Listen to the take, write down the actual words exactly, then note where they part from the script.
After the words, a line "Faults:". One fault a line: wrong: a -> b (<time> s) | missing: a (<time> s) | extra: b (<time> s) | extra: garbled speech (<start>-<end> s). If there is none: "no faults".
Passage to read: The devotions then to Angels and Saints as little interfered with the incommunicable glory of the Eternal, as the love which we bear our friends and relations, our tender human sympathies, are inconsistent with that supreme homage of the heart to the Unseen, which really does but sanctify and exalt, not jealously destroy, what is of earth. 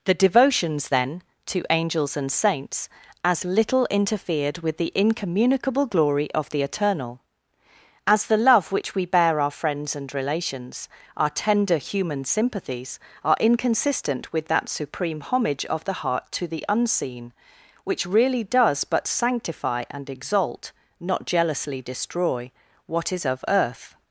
The devotions then to Angels and Saints as little interfered with the incommunicable glory of the Eternal, as the love which we bear our friends and relations, our tender human sympathies, are inconsistent with that supreme homage of the heart to the Unseen, which really does but sanctify and exalt, not jealously destroy, what is of earth.
Faults:
no faults